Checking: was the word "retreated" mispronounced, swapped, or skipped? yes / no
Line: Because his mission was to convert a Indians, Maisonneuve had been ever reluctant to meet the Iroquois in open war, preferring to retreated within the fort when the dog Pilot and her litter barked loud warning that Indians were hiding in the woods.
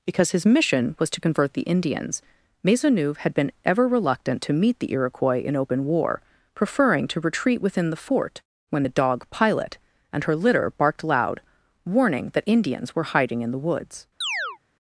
yes